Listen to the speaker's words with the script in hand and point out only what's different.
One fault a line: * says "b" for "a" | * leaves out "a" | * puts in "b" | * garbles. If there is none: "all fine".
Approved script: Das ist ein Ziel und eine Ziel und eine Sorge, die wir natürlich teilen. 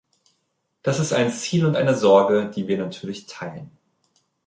* leaves out "Ziel und eine"